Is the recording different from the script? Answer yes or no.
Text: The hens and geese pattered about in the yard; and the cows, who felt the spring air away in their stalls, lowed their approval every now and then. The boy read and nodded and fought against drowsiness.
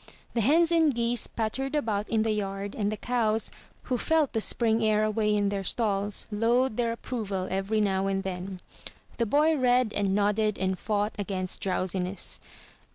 no